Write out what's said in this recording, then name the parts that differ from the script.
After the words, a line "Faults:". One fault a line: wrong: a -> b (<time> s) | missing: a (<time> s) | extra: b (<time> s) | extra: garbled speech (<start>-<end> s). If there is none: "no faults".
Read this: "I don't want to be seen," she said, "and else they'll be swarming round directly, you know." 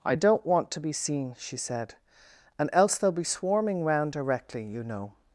"I don't want to be seen," she said, "and else they'll be swarming round directly, you know."
Faults:
no faults